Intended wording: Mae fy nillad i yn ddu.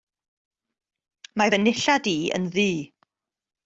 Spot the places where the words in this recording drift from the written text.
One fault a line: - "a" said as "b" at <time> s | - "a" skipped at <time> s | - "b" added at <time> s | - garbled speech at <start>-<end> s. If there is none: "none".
none